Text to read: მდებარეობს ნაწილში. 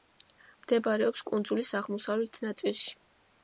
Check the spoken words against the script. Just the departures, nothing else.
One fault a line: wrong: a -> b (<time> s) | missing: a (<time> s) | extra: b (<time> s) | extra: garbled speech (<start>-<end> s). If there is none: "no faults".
extra: კუნძულის აღმოსავლეთ (1.3 s)